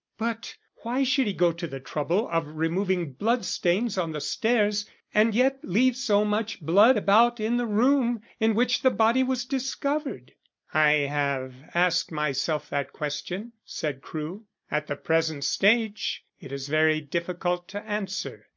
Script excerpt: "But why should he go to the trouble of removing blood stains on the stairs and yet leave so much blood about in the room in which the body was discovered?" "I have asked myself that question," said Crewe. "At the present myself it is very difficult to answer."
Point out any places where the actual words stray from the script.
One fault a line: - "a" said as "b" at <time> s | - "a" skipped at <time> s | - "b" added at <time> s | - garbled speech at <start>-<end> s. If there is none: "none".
- "myself" said as "stage" at 15.5 s